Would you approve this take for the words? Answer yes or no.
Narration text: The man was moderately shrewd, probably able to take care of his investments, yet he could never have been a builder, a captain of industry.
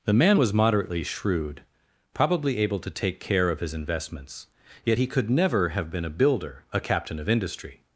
yes